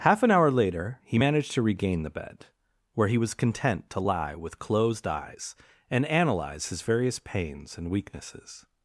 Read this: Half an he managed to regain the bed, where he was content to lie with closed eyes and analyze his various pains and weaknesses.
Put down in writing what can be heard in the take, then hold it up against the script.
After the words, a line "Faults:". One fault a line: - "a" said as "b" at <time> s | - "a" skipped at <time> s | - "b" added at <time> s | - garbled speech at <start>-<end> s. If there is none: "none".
Half an hour later he managed to regain the bed, where he was content to lie with closed eyes and analyze his various pains and weaknesses.
Faults:
- "hour later" added at 0.3 s